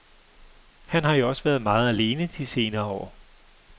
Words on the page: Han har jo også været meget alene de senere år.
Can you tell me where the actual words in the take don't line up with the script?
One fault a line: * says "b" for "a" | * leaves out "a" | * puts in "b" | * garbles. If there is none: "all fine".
all fine